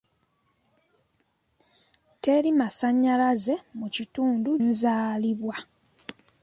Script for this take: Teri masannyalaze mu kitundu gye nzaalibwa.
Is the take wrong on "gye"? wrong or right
wrong